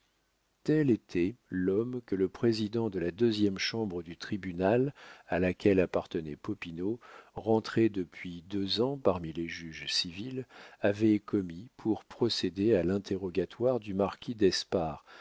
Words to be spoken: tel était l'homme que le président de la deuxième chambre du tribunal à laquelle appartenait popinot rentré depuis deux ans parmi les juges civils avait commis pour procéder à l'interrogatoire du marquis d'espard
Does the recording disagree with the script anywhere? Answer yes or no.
no